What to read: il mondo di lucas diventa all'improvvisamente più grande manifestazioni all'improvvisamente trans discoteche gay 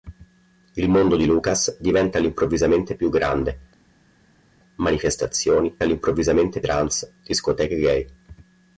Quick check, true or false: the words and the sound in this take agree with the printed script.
true